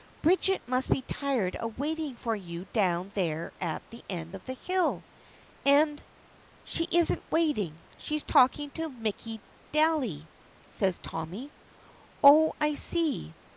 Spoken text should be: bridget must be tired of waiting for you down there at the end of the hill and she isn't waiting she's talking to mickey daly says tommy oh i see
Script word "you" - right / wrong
right